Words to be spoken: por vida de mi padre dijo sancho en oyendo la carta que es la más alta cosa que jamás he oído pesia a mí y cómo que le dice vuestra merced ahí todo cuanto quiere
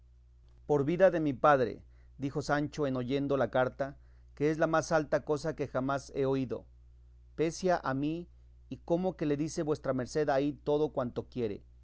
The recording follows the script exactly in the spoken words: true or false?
true